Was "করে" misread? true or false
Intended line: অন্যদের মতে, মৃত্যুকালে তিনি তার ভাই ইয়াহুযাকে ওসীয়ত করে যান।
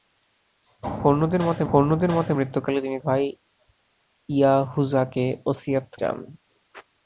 true